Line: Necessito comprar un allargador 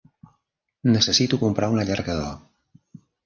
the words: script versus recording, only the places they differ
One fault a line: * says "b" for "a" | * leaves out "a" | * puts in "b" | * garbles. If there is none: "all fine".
all fine